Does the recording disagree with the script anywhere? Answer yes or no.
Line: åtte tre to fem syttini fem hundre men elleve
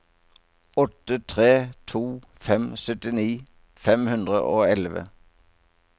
yes